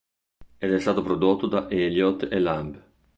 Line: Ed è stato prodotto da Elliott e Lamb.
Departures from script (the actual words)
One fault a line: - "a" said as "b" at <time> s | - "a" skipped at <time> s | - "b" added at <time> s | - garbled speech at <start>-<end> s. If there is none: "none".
none